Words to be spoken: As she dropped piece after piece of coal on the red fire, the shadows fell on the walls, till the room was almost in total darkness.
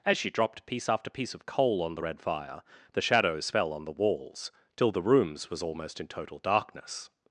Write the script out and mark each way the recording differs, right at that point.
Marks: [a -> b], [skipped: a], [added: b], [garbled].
As she dropped piece after piece of coal on the red fire, the shadows fell on the walls, till the [room -> rooms] was almost in total darkness.